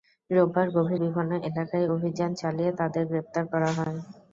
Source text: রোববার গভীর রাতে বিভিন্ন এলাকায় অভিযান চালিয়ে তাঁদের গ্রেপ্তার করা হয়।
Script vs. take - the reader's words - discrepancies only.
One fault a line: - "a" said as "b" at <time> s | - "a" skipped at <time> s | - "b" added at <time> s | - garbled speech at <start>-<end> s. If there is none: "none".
- "রাতে" skipped at 1.0 s